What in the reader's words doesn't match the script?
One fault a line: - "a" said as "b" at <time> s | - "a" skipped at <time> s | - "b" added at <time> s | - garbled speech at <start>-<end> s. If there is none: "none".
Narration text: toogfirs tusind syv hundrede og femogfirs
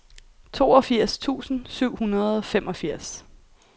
none